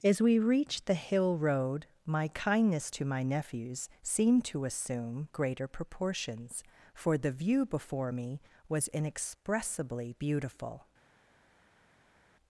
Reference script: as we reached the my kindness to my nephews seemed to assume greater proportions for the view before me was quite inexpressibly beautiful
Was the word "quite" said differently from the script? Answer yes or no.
yes